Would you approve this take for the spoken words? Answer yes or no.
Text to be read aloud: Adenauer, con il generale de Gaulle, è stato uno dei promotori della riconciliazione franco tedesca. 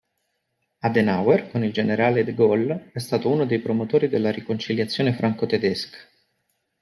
yes